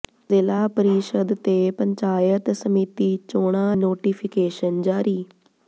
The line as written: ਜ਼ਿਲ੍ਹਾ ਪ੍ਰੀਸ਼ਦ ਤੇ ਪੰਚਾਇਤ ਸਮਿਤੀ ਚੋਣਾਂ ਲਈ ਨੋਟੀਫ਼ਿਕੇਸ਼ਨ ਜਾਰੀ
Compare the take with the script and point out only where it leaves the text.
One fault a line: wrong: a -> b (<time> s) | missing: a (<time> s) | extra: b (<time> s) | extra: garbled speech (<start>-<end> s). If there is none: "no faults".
missing: ਲਈ (3.8 s)